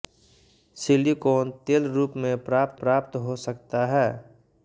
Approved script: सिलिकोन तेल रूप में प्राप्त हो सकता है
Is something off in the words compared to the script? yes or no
yes